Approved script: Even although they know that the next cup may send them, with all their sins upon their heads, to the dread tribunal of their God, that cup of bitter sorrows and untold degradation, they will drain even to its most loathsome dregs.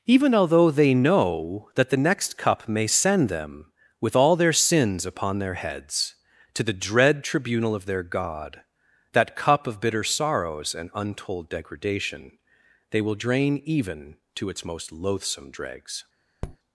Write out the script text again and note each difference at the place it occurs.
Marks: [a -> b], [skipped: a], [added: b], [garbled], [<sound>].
Even although they know that the next cup may send them, with all their sins upon their heads, to the dread tribunal of their God, that cup of bitter sorrows and untold degradation, they will drain even to its most loathsome dregs. [tap]